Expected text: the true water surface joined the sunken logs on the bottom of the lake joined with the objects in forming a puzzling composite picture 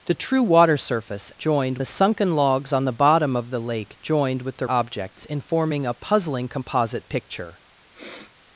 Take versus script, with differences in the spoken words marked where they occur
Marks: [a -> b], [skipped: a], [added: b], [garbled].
the true water surface joined the sunken logs on the bottom of the lake joined with the objects in forming a puzzling composite picture